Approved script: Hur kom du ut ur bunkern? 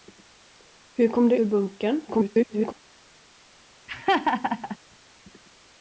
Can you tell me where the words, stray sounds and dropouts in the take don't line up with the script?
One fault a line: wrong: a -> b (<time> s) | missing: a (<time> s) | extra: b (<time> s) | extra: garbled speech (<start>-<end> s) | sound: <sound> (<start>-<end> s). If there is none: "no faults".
missing: ut (1.4 s)
extra: garbled speech (2.1-2.7 s)
sound: laugh (3.9-4.8 s)